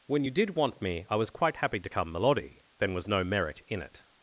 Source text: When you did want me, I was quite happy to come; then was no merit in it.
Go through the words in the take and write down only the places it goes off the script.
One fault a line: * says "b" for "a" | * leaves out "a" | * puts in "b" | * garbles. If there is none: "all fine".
* puts in "melody"